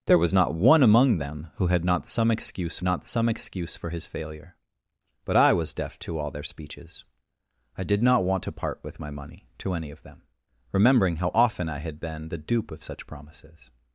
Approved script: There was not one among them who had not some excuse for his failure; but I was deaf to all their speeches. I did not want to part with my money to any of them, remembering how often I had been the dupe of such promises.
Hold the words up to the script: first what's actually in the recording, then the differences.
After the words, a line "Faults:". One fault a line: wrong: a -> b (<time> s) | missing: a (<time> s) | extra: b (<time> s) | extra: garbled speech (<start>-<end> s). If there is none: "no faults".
There was not one among them who had not some excuse not some excuse for his failure; but I was deaf to all their speeches. I did not want to part with my money to any of them, remembering how often I had been the dupe of such promises.
Faults:
extra: not some excuse (2.8 s)